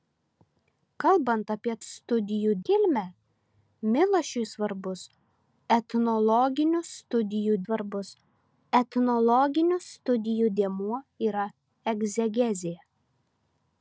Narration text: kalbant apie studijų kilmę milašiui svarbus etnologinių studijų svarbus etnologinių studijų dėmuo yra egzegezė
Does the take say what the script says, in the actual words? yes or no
yes